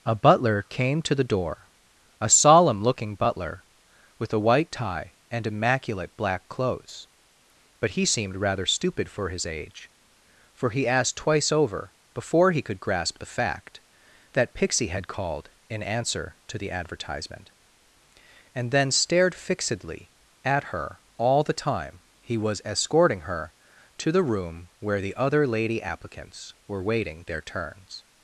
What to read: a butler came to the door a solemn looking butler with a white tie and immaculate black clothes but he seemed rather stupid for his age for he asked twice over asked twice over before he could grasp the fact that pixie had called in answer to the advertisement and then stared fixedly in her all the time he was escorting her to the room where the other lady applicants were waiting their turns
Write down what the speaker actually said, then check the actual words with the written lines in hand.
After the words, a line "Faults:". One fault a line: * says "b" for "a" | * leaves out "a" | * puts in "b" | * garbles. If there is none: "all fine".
a butler came to the door a solemn looking butler with a white tie and immaculate black clothes but he seemed rather stupid for his age for he asked twice over before he could grasp the fact that pixie had called in answer to the advertisement and then stared fixedly at her all the time he was escorting her to the room where the other lady applicants were waiting their turns
Faults:
* leaves out "asked twice over"
* says "at" for "in"